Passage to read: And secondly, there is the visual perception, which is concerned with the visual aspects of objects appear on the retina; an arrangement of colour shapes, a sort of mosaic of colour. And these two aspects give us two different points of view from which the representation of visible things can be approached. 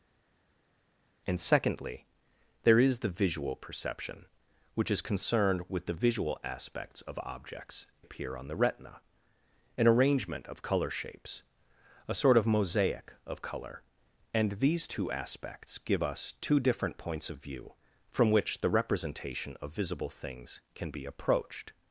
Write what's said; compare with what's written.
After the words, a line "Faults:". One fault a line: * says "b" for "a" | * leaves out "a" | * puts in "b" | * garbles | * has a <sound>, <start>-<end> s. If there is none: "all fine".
And secondly, there is the visual perception, which is concerned with the visual aspects of objects appear on the retina; an arrangement of colour shapes, a sort of mosaic of colour. And these two aspects give us two different points of view from which the representation of visible things can be approached.
Faults:
all fine